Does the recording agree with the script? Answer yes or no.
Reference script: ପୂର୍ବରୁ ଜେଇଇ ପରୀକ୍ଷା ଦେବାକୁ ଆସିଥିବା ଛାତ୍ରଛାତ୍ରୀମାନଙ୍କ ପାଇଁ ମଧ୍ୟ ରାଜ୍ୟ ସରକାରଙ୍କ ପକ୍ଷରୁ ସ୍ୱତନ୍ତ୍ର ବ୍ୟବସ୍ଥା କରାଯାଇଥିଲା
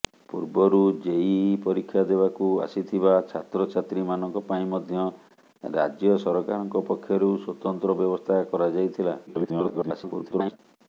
no